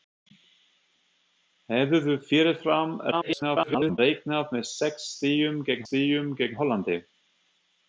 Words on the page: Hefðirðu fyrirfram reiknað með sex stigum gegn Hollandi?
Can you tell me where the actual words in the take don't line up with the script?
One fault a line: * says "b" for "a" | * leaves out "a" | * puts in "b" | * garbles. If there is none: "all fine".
* garbles
* puts in "stigum gegn"